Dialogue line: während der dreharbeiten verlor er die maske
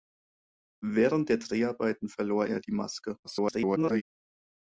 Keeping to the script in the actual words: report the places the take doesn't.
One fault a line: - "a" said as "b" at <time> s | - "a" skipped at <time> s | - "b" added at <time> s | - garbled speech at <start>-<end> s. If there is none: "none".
- garbled speech at 3.2-4.0 s